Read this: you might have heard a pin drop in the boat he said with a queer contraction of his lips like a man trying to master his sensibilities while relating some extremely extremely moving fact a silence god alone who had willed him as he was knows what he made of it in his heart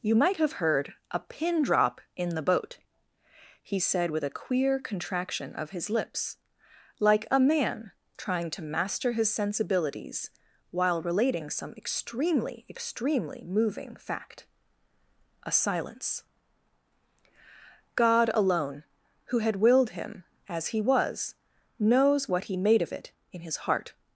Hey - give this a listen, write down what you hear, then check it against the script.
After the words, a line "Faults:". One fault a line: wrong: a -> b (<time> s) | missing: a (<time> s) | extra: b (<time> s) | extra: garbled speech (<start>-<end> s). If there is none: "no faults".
you might have heard a pin drop in the boat he said with a queer contraction of his lips like a man trying to master his sensibilities while relating some extremely extremely moving fact a silence god alone who had willed him as he was knows what he made of it in his heart
Faults:
no faults